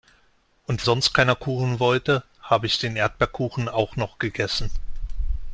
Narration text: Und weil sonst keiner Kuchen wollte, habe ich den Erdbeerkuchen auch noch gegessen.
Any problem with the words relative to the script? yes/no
yes